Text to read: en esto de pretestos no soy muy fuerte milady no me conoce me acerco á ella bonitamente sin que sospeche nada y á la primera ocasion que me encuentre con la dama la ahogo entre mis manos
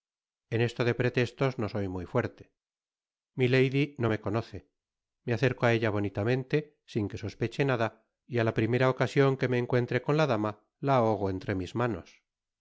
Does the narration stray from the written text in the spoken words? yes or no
no